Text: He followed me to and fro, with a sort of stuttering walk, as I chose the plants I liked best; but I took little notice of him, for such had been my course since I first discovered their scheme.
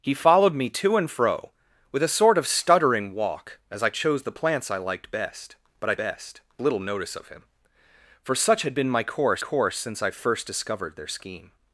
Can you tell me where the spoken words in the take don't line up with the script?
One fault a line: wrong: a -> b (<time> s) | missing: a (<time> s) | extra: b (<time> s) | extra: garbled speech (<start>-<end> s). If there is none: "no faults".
wrong: took -> best (6.0 s)
extra: course (9.4 s)